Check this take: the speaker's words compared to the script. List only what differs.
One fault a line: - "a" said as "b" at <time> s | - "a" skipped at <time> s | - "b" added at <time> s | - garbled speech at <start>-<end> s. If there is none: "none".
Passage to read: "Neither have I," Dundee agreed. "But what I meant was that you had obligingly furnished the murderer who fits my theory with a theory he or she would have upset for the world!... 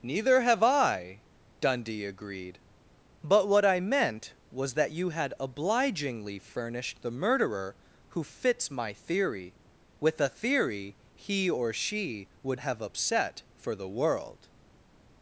none